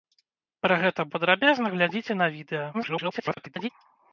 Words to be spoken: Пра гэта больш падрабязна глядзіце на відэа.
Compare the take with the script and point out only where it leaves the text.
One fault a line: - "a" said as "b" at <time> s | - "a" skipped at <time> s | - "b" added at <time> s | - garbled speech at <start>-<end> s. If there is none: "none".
- "больш" skipped at 1.1 s
- garbled speech at 2.7-3.7 s